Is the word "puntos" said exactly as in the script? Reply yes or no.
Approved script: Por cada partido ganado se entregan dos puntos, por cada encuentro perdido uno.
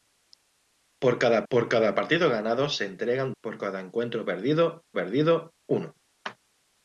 no